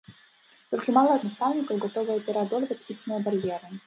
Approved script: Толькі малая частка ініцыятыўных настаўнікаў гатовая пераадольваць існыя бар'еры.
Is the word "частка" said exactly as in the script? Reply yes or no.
no